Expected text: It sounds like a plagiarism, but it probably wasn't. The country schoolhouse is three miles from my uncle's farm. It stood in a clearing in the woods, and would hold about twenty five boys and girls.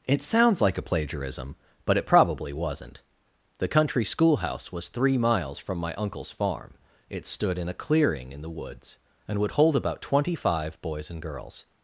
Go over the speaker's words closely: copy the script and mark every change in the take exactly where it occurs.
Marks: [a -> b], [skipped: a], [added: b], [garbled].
It sounds like a plagiarism, but it probably wasn't. The country schoolhouse [is -> was] three miles from my uncle's farm. It stood in a clearing in the woods, and would hold about twenty five boys and girls.